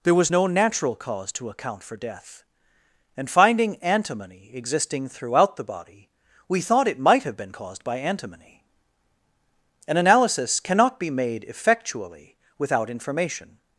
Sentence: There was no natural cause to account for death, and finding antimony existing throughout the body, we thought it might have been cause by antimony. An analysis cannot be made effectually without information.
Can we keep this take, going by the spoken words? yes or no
no